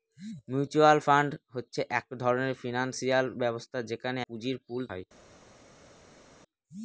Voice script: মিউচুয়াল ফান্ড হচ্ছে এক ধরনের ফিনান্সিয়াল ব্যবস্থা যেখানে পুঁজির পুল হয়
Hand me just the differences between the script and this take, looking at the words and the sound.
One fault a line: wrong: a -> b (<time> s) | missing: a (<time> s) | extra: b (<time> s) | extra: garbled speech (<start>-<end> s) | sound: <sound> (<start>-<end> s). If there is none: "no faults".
no faults